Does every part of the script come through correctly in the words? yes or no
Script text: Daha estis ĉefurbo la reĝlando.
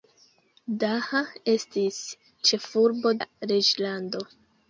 yes